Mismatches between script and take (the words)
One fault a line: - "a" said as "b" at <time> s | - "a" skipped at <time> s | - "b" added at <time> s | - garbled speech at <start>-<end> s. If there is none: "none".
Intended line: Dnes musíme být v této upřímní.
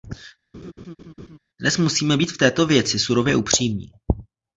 - "věci surově" added at 2.7 s